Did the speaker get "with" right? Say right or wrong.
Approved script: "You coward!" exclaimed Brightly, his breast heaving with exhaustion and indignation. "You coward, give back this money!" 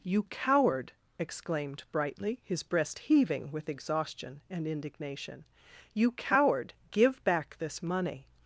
right